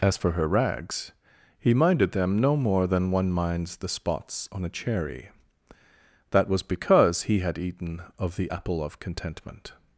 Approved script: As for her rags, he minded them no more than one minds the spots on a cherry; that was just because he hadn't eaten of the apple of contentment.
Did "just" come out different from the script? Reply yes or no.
yes